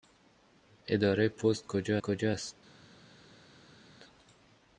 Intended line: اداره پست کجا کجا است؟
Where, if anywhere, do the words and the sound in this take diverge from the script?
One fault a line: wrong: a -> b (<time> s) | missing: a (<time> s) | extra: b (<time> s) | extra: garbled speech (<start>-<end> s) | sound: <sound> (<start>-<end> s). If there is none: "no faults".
no faults